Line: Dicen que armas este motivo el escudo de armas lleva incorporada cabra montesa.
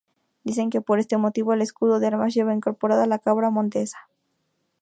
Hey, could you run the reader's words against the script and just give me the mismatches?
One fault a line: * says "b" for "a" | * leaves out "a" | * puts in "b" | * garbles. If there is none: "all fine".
* says "por" for "armas"
* puts in "la"